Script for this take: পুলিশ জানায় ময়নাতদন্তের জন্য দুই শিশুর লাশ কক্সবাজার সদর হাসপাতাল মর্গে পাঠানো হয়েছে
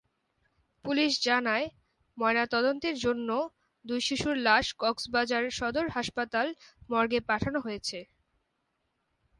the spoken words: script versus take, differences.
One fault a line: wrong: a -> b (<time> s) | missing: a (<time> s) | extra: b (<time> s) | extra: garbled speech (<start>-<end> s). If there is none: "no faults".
no faults